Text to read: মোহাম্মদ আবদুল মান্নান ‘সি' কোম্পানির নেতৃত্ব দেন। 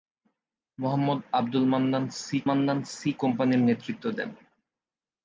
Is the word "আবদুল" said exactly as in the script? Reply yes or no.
yes